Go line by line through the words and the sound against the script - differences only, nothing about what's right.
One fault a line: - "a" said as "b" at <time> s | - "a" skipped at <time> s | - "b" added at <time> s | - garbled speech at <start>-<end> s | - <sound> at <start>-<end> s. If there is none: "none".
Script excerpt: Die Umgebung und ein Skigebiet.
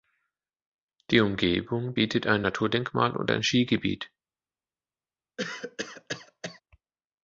- "bietet ein Naturdenkmal" added at 1.9 s
- cough at 5.4-6.6 s